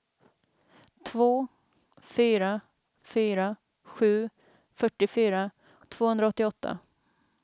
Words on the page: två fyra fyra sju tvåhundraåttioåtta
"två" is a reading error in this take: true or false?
false